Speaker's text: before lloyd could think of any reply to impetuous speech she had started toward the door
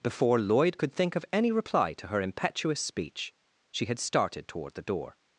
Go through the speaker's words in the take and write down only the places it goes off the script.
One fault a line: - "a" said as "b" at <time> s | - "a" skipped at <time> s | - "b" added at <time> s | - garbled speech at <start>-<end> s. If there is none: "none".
- "her" added at 2.1 s